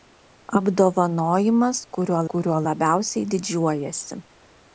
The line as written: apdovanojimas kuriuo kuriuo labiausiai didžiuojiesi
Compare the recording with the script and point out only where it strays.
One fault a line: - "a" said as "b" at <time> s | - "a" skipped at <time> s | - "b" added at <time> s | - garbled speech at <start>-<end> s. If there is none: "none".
none